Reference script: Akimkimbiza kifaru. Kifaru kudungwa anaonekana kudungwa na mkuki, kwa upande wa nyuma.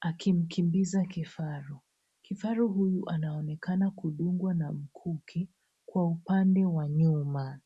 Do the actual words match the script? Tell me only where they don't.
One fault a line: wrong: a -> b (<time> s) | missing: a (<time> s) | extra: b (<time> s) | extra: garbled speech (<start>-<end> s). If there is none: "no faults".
wrong: kudungwa -> huyu (2.7 s)